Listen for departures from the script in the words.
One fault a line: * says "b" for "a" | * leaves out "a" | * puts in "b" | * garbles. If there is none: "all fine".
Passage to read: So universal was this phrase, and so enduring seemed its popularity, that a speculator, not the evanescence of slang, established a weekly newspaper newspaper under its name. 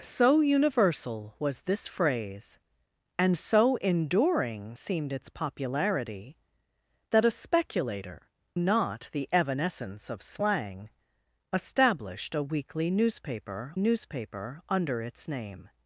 all fine